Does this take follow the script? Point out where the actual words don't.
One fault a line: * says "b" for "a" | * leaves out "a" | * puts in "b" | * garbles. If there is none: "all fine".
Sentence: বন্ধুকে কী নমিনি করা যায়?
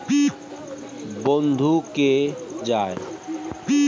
* leaves out "কী নমিনি করা"